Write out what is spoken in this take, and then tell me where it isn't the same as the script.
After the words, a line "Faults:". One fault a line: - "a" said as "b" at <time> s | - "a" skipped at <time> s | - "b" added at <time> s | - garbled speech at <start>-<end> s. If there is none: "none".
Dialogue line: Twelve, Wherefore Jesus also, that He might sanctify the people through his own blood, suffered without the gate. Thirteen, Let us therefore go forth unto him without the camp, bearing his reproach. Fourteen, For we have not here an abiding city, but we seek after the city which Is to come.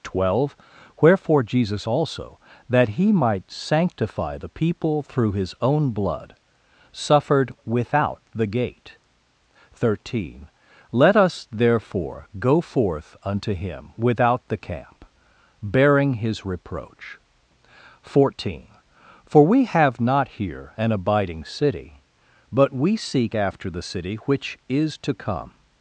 Twelve, Wherefore Jesus also, that He might sanctify the people through his own blood, suffered without the gate. Thirteen, Let us therefore go forth unto him without the camp, bearing his reproach. Fourteen, For we have not here an abiding city, but we seek after the city which Is to come.
Faults:
none